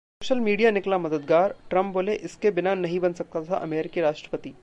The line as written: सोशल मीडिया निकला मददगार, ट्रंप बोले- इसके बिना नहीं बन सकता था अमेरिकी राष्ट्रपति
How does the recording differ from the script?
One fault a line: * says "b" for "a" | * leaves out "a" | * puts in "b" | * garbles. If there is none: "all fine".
all fine